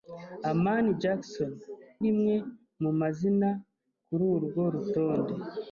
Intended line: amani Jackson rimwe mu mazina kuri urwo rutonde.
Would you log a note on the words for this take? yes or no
no